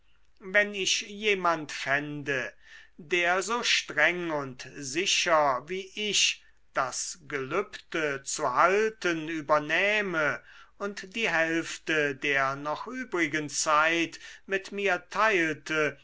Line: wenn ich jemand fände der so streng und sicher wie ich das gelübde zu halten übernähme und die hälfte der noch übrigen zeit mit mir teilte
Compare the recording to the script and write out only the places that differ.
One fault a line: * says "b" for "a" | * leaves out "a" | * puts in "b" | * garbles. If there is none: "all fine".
all fine